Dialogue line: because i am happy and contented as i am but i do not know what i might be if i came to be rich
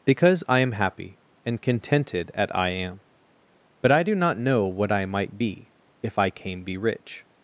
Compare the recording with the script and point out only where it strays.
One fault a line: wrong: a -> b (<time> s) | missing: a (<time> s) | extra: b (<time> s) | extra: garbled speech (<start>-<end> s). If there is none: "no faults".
wrong: as -> at (2.3 s)
missing: to (6.6 s)